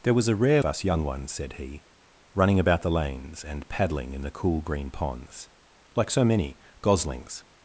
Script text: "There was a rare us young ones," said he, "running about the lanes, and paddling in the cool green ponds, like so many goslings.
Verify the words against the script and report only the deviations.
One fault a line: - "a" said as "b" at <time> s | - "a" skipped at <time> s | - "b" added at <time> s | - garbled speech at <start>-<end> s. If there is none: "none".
none